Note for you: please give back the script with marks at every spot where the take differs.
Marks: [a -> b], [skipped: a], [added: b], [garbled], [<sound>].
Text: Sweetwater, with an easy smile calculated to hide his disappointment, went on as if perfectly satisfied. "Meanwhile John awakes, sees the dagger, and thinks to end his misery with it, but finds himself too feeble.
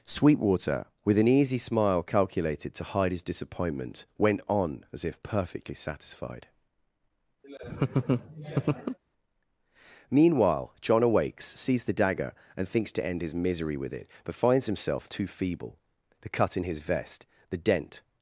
Sweetwater, with an easy smile calculated to hide his disappointment, went on as if perfectly satisfied. [laugh] "Meanwhile John awakes, sees the dagger, and thinks to end his misery with it, but finds himself too feeble. [added: The cut in his vest the dent]